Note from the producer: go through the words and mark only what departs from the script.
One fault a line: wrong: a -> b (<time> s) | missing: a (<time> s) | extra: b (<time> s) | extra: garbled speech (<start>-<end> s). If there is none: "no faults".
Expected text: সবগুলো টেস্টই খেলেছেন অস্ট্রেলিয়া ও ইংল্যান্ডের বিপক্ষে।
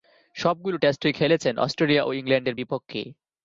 no faults